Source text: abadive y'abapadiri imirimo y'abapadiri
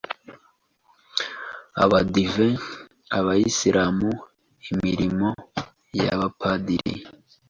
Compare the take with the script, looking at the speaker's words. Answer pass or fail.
fail